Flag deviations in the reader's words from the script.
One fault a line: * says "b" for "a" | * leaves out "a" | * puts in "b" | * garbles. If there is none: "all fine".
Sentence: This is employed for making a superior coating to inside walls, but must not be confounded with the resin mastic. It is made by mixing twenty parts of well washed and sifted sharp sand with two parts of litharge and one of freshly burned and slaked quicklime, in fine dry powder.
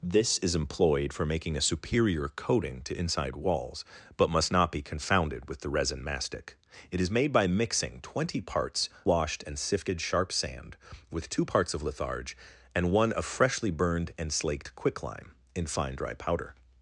* leaves out "of well"